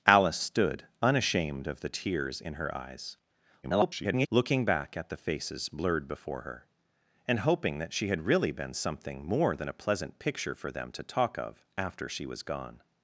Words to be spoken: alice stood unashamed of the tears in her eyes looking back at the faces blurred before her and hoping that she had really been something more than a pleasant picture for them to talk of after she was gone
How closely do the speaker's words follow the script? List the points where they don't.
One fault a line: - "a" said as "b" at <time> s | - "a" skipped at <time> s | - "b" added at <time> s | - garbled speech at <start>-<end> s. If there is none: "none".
- garbled speech at 3.6-4.3 s